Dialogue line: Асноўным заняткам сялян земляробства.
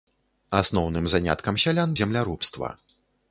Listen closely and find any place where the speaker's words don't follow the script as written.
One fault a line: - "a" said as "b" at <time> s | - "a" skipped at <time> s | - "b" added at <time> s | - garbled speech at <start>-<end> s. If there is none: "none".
none